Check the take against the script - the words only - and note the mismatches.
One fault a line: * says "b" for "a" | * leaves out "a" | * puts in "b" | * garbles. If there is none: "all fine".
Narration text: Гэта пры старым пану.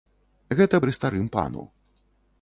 all fine